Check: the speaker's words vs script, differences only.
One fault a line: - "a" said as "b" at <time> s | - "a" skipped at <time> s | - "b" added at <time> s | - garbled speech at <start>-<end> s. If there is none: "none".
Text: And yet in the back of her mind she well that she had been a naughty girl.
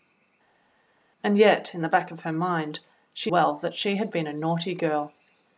none